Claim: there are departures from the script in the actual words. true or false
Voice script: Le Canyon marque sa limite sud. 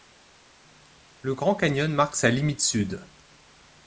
true